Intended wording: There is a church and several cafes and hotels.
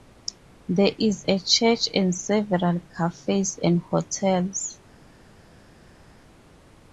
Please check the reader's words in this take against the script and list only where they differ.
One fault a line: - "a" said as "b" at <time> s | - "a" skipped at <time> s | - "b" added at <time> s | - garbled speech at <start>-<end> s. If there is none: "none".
none